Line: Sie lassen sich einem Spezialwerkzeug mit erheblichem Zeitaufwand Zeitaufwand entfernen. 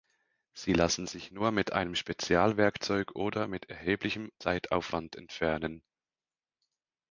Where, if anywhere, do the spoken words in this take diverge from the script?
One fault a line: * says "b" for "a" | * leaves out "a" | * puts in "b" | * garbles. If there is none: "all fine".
* puts in "nur mit"
* puts in "oder"
* leaves out "Zeitaufwand"